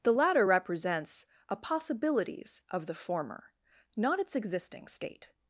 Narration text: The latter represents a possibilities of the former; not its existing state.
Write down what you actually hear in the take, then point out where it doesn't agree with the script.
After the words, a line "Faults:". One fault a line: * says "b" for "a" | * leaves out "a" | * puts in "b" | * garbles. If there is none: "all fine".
The latter represents a possibilities of the former; not its existing state.
Faults:
all fine